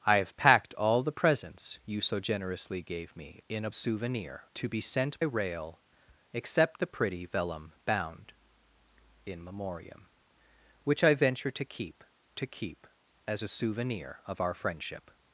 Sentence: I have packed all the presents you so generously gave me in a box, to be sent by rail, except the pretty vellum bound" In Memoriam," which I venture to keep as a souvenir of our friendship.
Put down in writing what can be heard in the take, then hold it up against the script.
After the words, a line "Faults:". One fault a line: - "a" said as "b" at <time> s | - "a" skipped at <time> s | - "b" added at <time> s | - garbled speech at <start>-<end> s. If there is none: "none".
I have packed all the presents you so generously gave me in a souvenir, to be sent rail, except the pretty vellum bound" In Memoriam," which I venture to keep to keep as a souvenir of our friendship.
Faults:
- "box" said as "souvenir" at 3.7 s
- "by" skipped at 5.2 s
- "to keep" added at 12.3 s